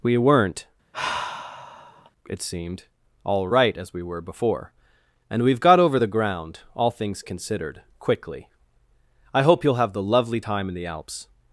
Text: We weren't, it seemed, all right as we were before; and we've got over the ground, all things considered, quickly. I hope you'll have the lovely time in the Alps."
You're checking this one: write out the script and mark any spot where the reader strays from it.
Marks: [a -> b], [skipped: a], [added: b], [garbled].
We weren't, it seemed, all right as we were before; and we've got over the ground, all things considered, quickly. I hope you'll have the lovely time in the Alps."